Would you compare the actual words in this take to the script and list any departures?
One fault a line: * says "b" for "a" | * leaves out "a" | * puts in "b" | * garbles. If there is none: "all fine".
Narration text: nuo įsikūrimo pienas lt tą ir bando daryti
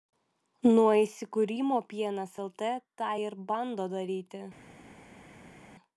all fine